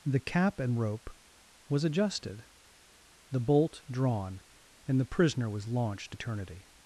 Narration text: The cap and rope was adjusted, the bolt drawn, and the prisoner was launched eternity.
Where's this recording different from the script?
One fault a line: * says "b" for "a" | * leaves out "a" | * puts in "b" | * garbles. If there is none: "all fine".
all fine